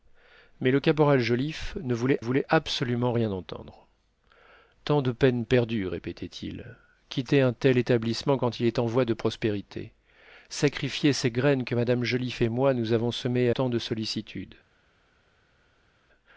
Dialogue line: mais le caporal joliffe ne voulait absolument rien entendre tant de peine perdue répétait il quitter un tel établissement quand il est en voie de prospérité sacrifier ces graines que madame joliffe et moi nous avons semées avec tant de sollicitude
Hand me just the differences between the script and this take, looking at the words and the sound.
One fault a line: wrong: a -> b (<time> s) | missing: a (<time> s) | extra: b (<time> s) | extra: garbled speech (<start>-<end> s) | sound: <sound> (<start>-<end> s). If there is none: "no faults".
extra: voulait (2.2 s)
missing: avec (13.5 s)